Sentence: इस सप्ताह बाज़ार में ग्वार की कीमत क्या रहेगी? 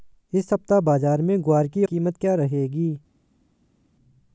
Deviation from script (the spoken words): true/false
false